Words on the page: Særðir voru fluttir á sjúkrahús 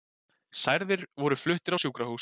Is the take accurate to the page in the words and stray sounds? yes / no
yes